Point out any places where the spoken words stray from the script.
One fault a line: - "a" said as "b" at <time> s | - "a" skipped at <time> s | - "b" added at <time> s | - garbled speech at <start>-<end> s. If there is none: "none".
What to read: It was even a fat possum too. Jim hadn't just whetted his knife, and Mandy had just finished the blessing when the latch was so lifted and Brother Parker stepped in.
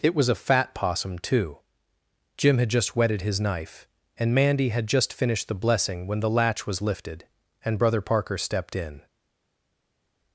- "even" skipped at 0.3 s
- "hadn't" said as "had" at 2.6 s
- "so" skipped at 6.8 s